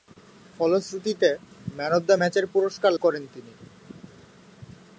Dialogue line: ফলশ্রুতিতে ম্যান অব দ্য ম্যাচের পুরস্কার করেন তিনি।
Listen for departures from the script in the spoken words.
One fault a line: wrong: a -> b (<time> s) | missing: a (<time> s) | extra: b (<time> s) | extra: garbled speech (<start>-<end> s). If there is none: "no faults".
no faults